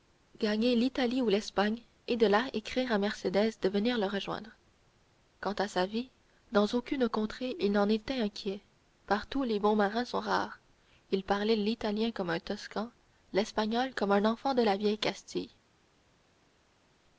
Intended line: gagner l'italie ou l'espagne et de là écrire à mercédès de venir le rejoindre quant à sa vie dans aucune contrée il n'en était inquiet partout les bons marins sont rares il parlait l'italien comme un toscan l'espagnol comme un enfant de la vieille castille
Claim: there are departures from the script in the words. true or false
false